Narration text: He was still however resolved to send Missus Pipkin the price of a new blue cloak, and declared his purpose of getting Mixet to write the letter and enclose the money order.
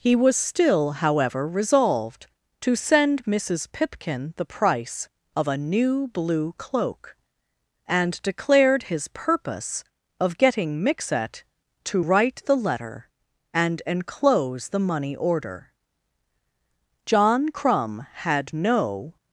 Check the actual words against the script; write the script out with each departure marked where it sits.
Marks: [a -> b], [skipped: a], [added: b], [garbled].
He was still however resolved to send Missus Pipkin the price of a new blue cloak, and declared his purpose of getting Mixet to write the letter and enclose the money order. [added: John Crumb had no]